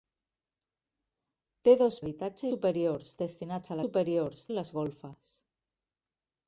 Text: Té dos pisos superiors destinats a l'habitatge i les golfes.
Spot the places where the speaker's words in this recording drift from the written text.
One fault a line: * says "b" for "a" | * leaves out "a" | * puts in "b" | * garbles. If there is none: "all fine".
* says "l'habitatge" for "pisos"
* says "superiors" for "l'habitatge"